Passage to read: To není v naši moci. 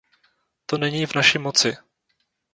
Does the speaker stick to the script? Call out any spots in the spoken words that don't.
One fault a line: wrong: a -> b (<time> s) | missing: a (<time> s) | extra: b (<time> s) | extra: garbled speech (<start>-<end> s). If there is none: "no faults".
no faults